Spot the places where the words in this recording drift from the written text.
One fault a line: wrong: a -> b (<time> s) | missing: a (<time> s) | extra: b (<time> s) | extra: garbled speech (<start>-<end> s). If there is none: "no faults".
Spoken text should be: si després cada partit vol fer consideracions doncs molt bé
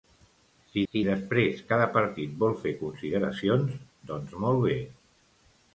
extra: si (0.9 s)